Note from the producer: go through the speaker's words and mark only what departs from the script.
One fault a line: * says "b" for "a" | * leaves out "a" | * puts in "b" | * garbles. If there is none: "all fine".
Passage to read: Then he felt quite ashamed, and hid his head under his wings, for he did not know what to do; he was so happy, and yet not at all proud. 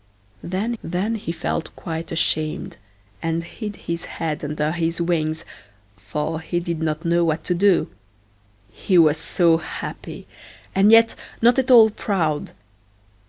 * puts in "then"